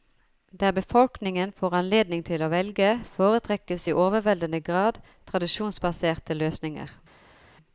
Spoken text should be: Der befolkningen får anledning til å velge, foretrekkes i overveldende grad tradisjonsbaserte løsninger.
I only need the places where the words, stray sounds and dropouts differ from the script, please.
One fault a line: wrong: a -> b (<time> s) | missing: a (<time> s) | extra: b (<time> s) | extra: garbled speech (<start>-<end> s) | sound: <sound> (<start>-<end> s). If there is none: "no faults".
no faults